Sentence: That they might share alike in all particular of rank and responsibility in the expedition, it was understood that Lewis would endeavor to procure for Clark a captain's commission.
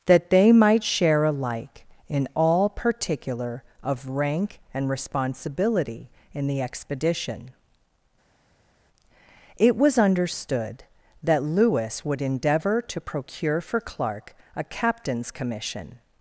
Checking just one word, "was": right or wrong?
right